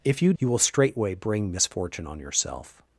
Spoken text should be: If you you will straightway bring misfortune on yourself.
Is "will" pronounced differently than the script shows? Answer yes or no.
no